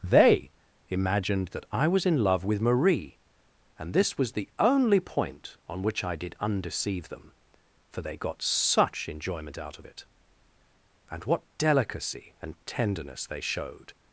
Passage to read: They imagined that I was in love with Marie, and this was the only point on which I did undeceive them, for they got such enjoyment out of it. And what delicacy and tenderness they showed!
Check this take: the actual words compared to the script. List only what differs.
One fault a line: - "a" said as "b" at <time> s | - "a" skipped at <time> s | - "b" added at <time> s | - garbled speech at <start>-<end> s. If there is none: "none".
none